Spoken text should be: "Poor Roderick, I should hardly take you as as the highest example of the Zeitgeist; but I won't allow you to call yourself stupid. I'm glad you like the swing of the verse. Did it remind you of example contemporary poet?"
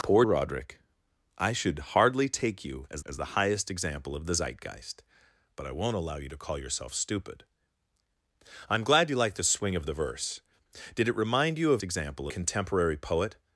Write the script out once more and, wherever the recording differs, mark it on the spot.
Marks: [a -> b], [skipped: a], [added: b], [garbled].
"Poor Roderick, I should hardly take you as as the highest example of the Zeitgeist; but I won't allow you to call yourself stupid. I'm glad you like the swing of the verse. Did it remind you of example contemporary poet?"